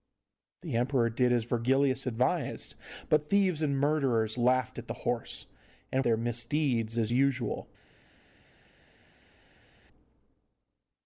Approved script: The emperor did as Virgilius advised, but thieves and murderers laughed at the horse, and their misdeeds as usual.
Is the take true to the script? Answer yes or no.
yes